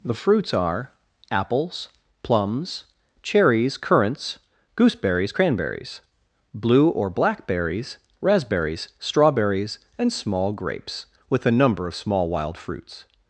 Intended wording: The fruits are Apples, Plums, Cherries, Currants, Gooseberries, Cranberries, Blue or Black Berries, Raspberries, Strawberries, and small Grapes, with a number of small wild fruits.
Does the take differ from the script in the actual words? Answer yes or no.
no